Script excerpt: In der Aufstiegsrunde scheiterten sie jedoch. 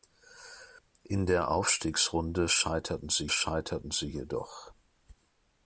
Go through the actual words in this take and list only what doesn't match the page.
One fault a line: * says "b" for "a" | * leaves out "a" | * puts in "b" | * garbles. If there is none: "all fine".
* puts in "scheiterten sie"